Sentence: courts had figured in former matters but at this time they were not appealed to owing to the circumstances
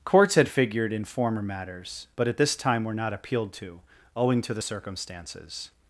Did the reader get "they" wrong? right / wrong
wrong